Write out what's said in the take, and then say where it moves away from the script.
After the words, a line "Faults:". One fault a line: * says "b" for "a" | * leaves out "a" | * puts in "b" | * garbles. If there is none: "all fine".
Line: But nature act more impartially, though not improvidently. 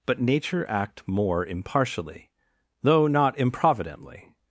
But nature act more impartially, though not improvidently.
Faults:
all fine